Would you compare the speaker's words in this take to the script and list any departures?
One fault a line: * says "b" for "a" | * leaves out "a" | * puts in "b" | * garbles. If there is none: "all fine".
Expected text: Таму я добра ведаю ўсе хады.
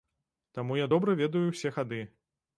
all fine